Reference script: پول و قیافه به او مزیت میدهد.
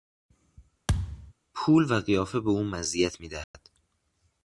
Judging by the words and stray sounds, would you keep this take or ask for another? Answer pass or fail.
fail